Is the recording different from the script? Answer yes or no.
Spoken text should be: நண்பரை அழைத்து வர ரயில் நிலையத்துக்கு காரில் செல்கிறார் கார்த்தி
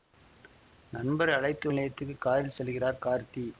yes